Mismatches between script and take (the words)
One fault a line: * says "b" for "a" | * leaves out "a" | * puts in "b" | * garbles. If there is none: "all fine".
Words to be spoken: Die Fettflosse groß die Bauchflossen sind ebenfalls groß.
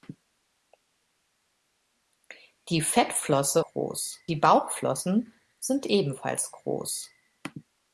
all fine